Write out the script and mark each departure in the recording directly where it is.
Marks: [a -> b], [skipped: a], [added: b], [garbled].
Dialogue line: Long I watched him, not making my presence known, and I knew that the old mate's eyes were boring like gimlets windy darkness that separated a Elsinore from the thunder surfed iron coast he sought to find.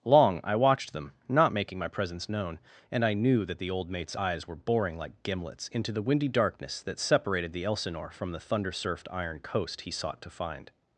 Long I watched [him, -> them] not making my presence known, and I knew that the old mate's eyes were boring like gimlets [added: into the] windy darkness that separated [a -> the] Elsinore from the thunder surfed iron coast he sought to find.